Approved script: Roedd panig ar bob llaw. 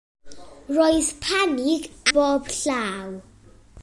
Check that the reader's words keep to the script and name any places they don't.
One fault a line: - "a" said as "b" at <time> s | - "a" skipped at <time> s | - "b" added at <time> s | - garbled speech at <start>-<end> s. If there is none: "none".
- "ar" skipped at 1.9 s